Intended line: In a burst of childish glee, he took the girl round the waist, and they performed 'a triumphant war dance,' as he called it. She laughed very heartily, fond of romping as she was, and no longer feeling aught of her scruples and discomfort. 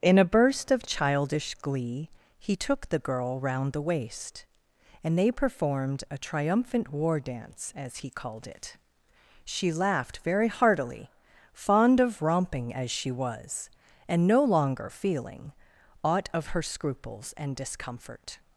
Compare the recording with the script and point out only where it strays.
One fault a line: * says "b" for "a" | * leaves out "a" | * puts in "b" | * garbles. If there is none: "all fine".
all fine